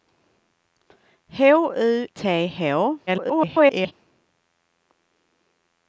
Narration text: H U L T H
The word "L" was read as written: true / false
false